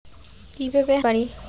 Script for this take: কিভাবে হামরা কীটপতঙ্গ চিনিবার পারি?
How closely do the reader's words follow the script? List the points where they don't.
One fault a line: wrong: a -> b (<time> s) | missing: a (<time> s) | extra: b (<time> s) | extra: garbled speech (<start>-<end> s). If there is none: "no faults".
missing: হামরা কীটপতঙ্গ চিনিবার (0.9 s)